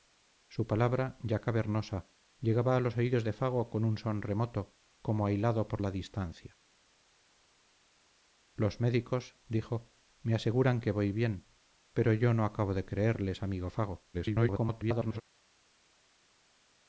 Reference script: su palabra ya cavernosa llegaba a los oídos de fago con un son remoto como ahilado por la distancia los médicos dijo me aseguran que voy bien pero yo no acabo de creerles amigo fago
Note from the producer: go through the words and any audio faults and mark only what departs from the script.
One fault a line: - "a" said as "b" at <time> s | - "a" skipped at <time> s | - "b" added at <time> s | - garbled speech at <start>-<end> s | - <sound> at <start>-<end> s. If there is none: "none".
- garbled speech at 14.1-15.2 s